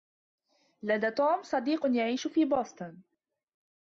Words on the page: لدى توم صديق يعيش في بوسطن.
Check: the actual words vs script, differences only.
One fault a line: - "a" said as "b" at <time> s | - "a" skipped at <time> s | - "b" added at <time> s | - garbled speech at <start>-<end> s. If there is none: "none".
none